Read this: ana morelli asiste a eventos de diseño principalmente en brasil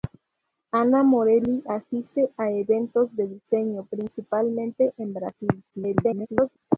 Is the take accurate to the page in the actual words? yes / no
no